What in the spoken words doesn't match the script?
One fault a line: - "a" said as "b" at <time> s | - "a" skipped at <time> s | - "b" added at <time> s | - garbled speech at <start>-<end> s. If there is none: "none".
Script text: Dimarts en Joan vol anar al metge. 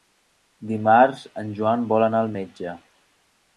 none